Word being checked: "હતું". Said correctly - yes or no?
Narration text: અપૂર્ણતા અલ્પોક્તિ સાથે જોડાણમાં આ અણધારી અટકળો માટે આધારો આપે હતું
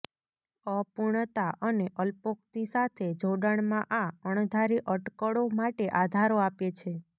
no